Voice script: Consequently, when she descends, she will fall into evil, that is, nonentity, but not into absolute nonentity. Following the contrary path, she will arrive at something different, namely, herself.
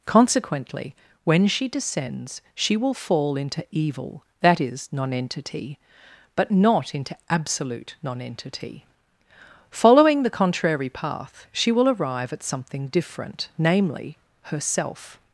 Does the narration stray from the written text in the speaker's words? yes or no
no